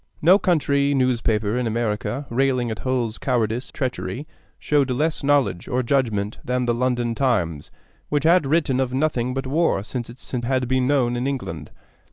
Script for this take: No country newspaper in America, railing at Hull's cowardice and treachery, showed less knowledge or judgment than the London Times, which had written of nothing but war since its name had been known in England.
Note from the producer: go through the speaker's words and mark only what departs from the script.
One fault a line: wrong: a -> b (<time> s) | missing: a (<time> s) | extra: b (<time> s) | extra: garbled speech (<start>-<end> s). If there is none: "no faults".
missing: and (3.7 s)
wrong: name -> since (10.2 s)